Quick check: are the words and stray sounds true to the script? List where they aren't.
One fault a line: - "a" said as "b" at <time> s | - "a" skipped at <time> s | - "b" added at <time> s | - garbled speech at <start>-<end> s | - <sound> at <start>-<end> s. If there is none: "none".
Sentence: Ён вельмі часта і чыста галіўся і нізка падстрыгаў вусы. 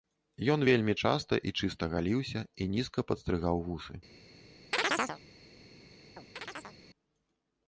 - chirp at 4.7-5.2 s
- chirp at 6.2-6.8 s